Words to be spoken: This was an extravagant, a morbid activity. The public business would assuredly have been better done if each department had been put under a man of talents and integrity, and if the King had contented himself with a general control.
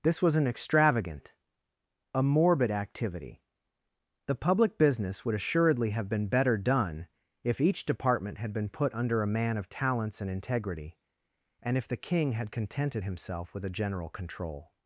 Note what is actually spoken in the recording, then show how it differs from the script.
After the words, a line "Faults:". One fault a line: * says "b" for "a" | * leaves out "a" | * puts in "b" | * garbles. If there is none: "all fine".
This was an extravagant, a morbid activity. The public business would assuredly have been better done if each department had been put under a man of talents and integrity, and if the King had contented himself with a general control.
Faults:
all fine